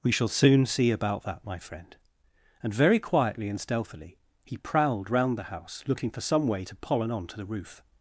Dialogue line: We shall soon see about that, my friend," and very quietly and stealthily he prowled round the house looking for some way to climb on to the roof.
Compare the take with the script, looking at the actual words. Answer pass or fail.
fail